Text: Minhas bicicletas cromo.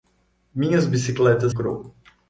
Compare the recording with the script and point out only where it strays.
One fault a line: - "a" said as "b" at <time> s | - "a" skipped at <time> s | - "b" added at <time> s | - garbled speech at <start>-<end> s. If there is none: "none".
none